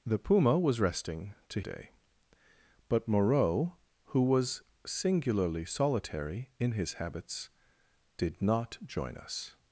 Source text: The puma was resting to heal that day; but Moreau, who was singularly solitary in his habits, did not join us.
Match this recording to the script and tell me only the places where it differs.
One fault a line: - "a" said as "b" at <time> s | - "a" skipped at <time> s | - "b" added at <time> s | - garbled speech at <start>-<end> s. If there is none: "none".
- "heal that" skipped at 1.6 s